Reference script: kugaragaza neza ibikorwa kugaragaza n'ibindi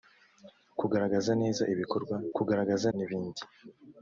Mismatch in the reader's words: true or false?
false